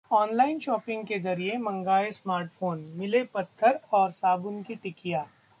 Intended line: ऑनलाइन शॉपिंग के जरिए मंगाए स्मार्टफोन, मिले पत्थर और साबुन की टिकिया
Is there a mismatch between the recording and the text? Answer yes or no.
no